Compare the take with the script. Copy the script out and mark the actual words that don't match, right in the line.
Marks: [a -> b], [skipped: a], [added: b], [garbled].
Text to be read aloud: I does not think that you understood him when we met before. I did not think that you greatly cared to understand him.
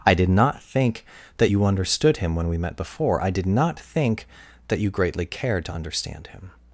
I [does -> did] not think that you understood him when we met before. I did not think that you greatly cared to understand him.